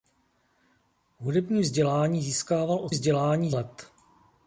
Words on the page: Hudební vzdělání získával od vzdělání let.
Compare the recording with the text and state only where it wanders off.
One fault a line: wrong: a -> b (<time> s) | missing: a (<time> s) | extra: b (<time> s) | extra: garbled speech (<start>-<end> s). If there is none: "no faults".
no faults